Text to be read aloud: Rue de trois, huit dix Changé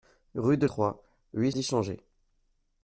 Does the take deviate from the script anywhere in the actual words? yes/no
no